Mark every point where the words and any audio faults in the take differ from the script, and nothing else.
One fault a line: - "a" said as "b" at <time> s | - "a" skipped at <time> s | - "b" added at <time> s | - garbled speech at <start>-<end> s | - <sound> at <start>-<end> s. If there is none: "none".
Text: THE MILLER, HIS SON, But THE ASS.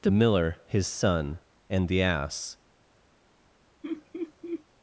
- "But" said as "AND" at 1.7 s
- laugh at 3.8-4.6 s